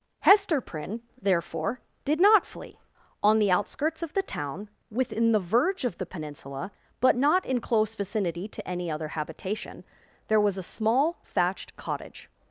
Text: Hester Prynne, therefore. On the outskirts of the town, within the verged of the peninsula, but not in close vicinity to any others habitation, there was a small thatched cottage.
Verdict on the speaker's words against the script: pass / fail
fail